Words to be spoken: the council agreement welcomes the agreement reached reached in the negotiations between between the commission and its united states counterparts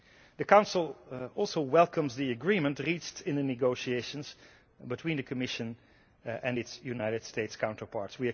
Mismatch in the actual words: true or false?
true